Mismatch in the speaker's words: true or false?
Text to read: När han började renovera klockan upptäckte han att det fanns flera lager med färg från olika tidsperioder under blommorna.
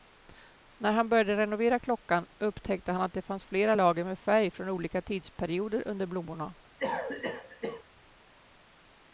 false